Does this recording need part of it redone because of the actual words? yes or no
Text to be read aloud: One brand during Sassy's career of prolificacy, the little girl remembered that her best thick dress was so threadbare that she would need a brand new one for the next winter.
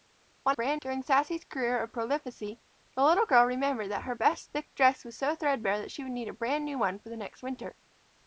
no